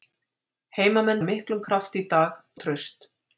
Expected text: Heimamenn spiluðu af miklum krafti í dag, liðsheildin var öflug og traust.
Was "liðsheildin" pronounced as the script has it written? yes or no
no